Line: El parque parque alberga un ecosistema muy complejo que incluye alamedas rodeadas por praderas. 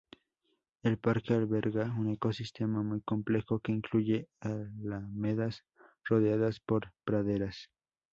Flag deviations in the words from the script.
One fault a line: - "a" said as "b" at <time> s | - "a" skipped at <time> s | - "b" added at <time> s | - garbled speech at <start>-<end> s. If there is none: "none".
- "parque" skipped at 1.4 s